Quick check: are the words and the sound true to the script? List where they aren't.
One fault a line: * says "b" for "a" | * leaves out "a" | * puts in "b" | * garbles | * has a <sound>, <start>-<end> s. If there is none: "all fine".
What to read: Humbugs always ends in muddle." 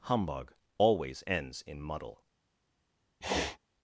* says "Humbug" for "Humbugs"
* has a sniff, 3.2-3.6 s